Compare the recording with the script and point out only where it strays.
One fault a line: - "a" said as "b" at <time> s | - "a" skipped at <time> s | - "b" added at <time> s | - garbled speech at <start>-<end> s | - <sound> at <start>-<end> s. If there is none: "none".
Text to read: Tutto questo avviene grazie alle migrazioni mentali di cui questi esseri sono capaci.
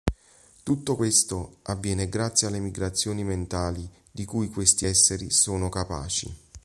none